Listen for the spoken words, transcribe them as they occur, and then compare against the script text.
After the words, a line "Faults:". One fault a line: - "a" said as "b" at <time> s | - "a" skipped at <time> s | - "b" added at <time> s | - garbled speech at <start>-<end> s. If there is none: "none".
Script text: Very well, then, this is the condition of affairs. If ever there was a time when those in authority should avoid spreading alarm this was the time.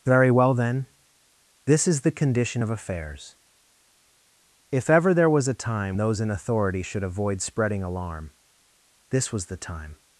Very well, then, this is the condition of affairs. If ever there was a time those in authority should avoid spreading alarm this was the time.
Faults:
- "when" skipped at 6.0 s